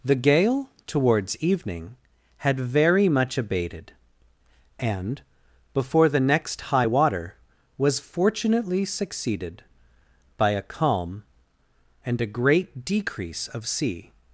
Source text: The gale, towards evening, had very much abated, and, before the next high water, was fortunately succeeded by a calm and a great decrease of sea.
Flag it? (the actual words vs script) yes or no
no